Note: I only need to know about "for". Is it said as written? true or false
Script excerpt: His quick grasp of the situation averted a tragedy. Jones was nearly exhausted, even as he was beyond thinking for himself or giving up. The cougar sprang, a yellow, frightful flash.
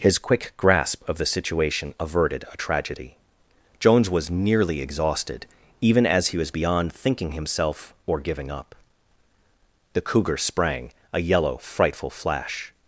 false